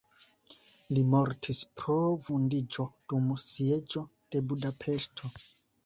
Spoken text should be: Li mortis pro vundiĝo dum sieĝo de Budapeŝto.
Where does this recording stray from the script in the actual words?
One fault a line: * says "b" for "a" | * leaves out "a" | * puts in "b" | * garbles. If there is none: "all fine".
all fine